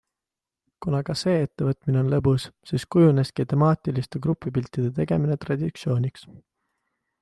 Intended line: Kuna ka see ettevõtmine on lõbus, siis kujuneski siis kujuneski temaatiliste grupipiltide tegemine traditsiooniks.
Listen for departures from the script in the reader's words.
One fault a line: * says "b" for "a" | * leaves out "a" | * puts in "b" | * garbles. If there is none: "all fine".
* leaves out "siis kujuneski"